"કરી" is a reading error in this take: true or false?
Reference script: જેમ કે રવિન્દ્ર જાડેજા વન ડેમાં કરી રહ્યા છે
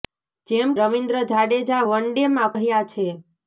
true